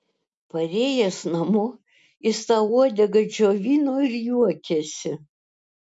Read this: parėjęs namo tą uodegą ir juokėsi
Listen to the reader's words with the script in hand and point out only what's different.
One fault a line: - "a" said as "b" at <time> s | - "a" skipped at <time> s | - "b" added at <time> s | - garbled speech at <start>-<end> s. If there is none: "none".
- "jis" added at 2.3 s
- "džiovino" added at 3.3 s